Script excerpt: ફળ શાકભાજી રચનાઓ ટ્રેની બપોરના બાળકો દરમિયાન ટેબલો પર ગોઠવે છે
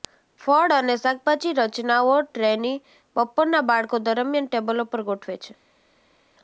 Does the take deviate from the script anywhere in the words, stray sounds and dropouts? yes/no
yes